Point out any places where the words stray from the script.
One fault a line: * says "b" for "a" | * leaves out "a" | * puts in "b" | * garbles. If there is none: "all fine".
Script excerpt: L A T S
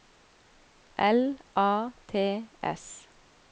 all fine